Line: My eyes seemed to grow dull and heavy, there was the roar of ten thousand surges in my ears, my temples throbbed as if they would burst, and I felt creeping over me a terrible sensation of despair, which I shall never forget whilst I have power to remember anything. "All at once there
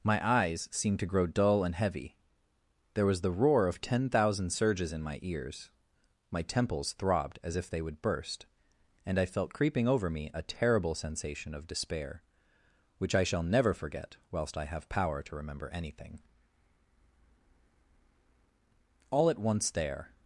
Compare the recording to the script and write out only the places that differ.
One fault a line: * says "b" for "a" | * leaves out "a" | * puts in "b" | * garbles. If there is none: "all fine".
all fine